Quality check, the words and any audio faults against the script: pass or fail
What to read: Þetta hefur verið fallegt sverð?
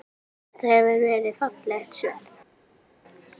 pass